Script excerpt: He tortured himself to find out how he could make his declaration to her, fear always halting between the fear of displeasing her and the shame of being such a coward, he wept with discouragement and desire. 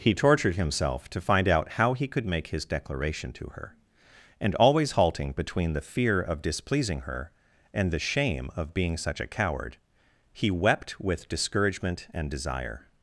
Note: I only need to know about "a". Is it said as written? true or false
true